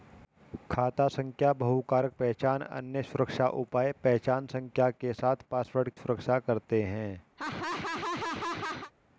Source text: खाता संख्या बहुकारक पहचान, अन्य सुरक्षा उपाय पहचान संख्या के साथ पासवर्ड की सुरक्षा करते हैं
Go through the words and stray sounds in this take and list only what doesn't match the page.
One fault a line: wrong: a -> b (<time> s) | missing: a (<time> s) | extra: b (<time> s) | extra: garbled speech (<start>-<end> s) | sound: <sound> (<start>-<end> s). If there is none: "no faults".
missing: की (5.9 s)
sound: laugh (7.4-8.9 s)